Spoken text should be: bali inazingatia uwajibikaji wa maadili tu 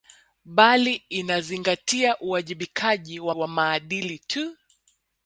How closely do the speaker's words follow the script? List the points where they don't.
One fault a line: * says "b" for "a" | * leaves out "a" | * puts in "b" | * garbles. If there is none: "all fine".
* puts in "wa"